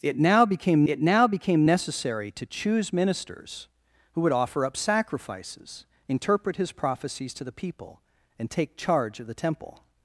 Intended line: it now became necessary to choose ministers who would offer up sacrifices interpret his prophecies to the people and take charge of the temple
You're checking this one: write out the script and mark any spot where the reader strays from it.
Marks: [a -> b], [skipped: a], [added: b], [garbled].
it now became [added: it now became] necessary to choose ministers who would offer up sacrifices interpret his prophecies to the people and take charge of the temple